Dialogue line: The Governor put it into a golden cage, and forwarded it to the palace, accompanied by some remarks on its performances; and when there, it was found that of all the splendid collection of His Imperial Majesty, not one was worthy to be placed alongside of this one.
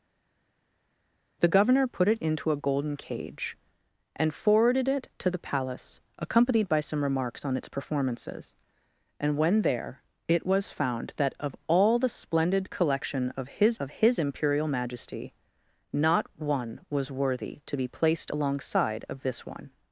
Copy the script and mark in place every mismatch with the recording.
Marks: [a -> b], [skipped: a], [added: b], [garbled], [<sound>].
The Governor put it into a golden cage, and forwarded it to the palace, accompanied by some remarks on its performances; and when there, it was found that of all the splendid collection of His [added: of His] Imperial Majesty, not one was worthy to be placed alongside of this one.